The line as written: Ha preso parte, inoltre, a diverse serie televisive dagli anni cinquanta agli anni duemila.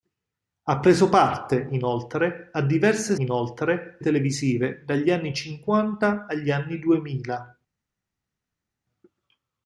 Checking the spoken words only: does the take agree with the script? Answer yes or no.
no